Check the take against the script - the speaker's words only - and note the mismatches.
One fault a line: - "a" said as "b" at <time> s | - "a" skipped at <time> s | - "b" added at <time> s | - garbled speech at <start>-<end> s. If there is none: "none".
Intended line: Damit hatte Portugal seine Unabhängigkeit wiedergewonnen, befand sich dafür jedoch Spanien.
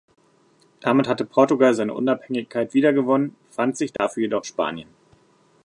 none